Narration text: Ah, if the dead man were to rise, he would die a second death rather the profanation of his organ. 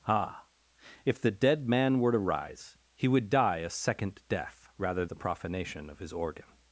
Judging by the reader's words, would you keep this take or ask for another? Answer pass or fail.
pass